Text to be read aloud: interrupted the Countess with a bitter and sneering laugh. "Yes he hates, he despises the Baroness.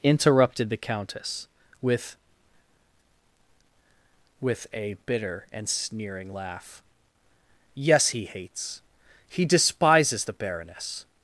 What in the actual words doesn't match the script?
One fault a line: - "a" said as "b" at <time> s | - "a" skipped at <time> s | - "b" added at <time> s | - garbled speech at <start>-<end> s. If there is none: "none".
- "with" added at 4.4 s